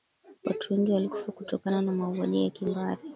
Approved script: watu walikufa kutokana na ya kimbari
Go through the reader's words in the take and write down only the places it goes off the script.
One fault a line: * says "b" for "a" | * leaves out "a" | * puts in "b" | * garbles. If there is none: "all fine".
* puts in "wengi"
* puts in "mauaji"